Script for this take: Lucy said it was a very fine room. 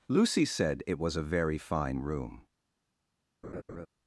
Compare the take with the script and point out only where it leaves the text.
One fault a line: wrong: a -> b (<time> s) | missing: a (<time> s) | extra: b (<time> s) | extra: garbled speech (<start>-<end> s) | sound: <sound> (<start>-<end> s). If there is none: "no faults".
sound: laugh (3.4-3.9 s)